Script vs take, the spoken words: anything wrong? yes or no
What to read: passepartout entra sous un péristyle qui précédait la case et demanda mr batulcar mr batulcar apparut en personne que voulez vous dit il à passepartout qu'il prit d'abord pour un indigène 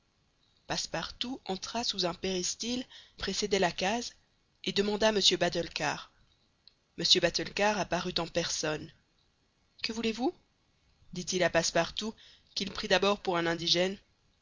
yes